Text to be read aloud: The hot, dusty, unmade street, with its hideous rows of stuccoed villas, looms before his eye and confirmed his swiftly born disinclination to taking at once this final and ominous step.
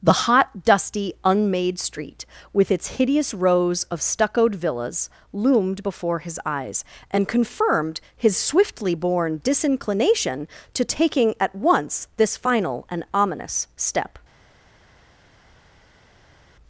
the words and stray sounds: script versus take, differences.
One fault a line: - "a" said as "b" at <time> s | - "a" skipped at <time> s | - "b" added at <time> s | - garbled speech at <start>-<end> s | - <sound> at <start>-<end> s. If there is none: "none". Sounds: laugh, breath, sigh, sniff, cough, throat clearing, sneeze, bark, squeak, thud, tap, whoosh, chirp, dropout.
- "looms" said as "loomed" at 5.3 s
- "eye" said as "eyes" at 6.4 s